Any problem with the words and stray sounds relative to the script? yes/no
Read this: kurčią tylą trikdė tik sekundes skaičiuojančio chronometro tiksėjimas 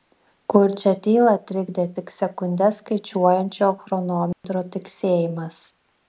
yes